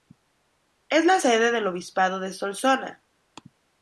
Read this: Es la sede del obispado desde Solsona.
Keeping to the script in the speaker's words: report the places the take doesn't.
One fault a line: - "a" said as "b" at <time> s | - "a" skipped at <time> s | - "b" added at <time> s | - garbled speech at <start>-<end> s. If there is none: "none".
- "desde" said as "de" at 2.2 s